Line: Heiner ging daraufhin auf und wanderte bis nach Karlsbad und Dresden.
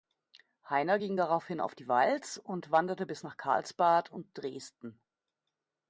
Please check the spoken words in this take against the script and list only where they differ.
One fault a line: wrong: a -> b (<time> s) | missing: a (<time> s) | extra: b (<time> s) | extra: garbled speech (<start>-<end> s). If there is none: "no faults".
extra: die Walz (1.7 s)